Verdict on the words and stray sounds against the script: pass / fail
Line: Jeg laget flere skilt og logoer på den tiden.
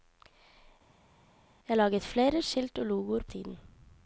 fail